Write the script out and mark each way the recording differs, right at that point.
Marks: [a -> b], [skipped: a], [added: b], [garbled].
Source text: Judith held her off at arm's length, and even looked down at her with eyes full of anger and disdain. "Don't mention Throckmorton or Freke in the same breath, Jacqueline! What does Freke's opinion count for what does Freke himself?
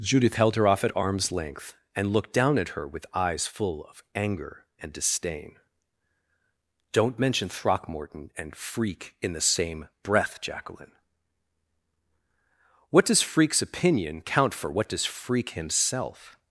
Judith held her off at arm's length, and [skipped: even] looked down at her with eyes full of anger and disdain. "Don't mention Throckmorton [or -> and] Freke in the same breath, Jacqueline! What does Freke's opinion count for what does Freke himself?